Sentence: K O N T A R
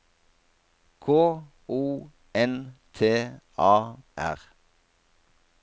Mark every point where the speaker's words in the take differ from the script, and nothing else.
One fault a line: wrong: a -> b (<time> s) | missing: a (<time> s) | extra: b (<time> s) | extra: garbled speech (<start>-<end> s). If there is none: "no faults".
no faults